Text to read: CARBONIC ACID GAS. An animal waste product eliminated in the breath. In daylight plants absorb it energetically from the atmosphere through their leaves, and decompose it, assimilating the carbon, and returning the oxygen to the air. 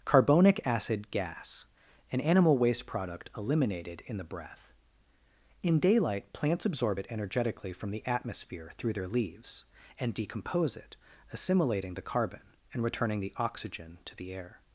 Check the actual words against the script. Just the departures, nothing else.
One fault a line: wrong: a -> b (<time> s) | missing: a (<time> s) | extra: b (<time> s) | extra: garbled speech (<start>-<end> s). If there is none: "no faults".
no faults